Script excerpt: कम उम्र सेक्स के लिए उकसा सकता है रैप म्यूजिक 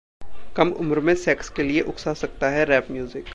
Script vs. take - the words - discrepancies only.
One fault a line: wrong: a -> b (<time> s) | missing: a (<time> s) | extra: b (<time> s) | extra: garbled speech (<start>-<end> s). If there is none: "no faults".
extra: में (1.0 s)